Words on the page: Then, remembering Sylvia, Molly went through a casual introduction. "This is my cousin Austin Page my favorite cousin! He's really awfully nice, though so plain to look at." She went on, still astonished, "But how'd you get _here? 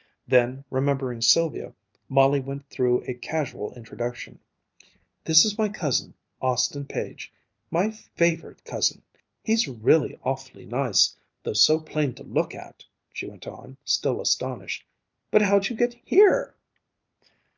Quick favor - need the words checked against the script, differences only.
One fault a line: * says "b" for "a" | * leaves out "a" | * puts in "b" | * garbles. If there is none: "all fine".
all fine